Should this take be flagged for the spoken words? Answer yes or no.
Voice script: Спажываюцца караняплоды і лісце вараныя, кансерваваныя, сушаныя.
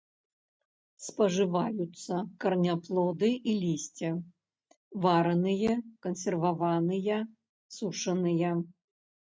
no